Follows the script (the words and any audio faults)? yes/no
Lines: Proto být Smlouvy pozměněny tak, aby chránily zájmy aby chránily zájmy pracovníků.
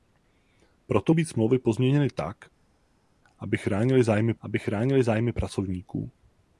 yes